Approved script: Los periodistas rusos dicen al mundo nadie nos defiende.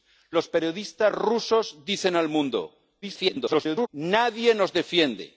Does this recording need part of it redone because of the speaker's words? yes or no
yes